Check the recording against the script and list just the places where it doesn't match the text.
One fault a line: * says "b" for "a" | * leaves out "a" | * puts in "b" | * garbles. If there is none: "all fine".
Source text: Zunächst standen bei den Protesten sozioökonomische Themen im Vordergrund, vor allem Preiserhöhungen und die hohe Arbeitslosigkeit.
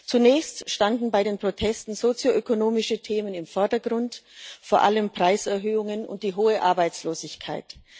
all fine